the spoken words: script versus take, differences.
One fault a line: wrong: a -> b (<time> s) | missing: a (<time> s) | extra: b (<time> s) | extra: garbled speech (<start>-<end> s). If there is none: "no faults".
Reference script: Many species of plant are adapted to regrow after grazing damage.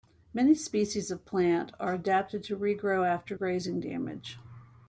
no faults